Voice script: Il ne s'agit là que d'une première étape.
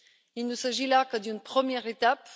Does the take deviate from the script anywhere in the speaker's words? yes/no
no